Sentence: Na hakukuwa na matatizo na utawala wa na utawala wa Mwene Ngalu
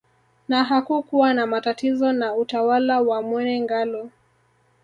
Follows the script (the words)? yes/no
no